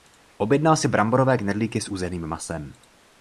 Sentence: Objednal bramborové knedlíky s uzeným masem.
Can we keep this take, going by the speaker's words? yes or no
no